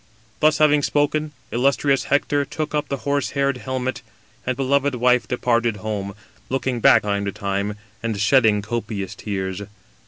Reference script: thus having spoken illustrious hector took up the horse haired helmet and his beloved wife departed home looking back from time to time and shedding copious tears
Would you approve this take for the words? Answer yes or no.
no